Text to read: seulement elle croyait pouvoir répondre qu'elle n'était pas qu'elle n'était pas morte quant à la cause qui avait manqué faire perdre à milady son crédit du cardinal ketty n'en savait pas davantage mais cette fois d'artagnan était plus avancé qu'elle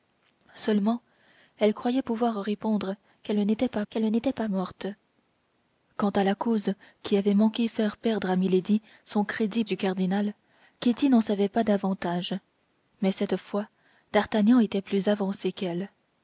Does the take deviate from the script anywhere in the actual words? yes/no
no